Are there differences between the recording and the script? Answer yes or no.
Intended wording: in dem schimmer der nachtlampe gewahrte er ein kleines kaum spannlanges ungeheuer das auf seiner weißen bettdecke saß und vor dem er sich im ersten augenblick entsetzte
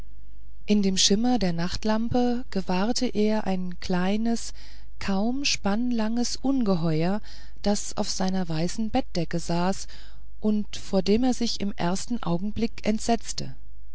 no